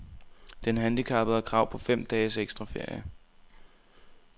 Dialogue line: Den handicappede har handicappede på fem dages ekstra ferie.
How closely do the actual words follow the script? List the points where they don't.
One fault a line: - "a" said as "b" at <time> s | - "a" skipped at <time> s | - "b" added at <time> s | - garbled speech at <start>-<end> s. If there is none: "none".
- "handicappede" said as "krav" at 1.4 s